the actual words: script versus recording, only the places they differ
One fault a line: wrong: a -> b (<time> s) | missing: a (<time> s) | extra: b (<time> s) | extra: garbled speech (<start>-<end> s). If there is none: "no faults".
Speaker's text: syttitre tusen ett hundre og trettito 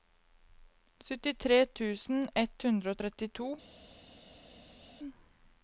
no faults